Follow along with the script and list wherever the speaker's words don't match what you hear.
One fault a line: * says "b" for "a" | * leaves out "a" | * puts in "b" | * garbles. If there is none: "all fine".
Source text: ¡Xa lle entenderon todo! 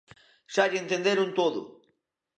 all fine